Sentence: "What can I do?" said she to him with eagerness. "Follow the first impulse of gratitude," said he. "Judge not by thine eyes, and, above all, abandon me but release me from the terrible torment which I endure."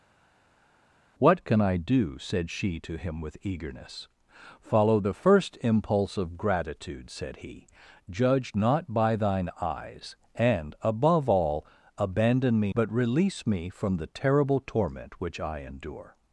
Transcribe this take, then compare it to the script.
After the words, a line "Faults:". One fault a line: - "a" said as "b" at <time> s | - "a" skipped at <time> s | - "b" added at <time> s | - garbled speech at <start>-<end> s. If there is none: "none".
"What can I do?" said she to him with eagerness. "Follow the first impulse of gratitude," said he. "Judge not by thine eyes, and, above all, abandon me but release me from the terrible torment which I endure."
Faults:
none